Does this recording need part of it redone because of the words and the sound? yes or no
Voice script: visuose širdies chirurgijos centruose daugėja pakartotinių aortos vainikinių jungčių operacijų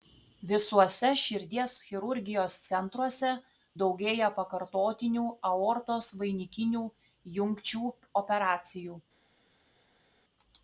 no